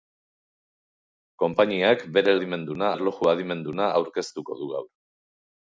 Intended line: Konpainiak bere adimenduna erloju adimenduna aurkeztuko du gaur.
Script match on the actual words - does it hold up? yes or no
yes